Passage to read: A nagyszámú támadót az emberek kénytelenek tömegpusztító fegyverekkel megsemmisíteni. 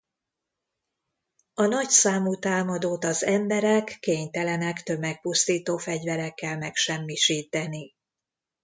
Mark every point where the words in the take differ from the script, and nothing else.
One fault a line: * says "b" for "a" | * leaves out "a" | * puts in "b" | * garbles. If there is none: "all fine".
all fine